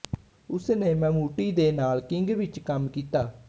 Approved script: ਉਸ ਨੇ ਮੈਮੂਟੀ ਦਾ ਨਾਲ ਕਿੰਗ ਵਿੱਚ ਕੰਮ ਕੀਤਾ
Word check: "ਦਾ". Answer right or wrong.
wrong